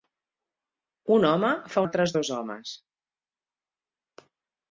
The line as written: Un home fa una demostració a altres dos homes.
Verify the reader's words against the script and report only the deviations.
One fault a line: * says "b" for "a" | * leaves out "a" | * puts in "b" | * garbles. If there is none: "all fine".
* leaves out "una demostració a"